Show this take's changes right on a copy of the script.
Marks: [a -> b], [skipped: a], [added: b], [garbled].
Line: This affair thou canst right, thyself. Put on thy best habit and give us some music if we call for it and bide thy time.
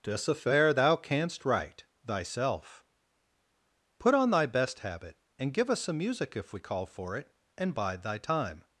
This affair thou canst right, thyself. Put on thy best habit and give us some music if we call for it and bide thy time.